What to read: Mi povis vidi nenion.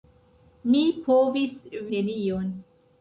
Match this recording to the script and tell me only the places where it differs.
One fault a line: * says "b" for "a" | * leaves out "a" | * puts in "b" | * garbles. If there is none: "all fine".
* leaves out "vidi"